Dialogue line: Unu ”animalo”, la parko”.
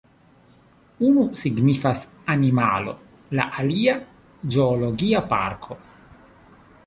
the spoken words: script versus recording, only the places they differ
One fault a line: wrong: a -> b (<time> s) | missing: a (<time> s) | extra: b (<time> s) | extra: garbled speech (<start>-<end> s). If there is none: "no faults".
extra: signifas (1.4 s)
extra: alia zoologia (3.6 s)